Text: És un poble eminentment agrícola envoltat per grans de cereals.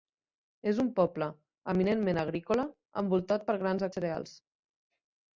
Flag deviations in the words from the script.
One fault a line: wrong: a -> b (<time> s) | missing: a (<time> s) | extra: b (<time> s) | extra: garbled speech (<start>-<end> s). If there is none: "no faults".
no faults